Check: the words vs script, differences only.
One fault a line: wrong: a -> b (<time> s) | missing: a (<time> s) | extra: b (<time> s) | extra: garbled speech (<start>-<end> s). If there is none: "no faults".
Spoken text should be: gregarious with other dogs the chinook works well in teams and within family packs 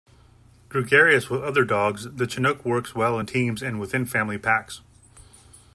no faults